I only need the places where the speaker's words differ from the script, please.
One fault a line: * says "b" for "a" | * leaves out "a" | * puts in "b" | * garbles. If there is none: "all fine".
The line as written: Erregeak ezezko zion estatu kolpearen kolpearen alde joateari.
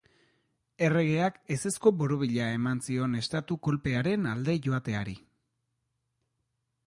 * puts in "borobila eman"
* leaves out "kolpearen"